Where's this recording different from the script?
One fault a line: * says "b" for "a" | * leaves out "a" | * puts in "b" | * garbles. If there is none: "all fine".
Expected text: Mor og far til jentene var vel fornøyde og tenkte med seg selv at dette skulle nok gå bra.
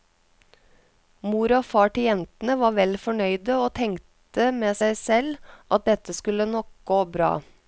all fine